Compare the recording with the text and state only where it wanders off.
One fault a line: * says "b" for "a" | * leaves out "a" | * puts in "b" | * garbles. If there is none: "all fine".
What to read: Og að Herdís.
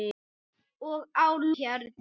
all fine